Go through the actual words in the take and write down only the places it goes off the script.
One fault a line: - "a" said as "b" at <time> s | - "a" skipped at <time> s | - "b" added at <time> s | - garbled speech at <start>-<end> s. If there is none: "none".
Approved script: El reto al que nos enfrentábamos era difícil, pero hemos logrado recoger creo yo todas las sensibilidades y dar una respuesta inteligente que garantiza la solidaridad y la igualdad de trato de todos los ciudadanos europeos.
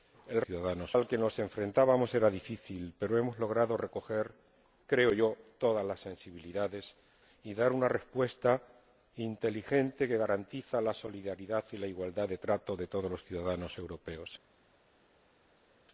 - "reto" said as "ciudadanos" at 0.4 s